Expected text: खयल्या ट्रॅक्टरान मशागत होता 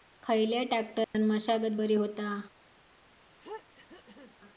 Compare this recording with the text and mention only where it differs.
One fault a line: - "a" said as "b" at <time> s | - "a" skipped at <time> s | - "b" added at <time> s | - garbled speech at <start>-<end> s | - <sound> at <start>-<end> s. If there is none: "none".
- dropout at 1.0-1.1 s
- "बरी" added at 1.7 s
- throat clearing at 3.4-4.4 s